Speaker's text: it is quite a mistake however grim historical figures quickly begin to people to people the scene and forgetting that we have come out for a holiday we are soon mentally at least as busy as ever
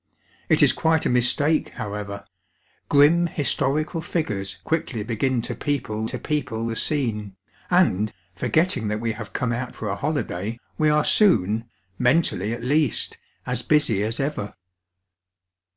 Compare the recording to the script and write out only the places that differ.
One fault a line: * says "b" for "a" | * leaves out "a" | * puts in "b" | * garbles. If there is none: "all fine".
all fine